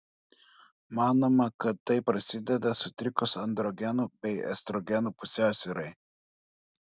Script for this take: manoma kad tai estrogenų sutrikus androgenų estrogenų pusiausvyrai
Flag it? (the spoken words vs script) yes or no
yes